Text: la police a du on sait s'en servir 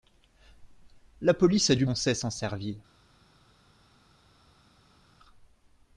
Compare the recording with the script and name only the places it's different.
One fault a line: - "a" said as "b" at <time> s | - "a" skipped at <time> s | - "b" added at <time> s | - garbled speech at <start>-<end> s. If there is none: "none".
none